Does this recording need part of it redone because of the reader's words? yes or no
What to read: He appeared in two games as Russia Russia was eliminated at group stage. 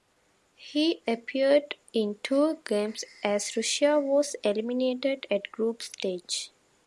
yes